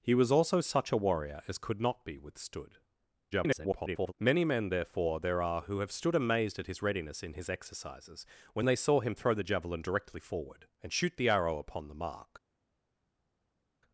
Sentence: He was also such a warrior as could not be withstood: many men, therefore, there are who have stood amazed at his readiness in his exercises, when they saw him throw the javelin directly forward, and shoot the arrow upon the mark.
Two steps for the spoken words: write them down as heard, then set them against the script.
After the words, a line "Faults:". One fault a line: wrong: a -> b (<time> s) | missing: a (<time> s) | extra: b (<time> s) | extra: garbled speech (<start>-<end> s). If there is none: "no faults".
He was also such a warrior as could not be withstood: [garbled] many men, therefore, there are who have stood amazed at his readiness in his exercises, when they saw him throw the javelin directly forward, and shoot the arrow upon the mark.
Faults:
extra: garbled speech (3.3-4.1 s)